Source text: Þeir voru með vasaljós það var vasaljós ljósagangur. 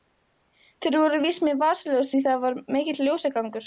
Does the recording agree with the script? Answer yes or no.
no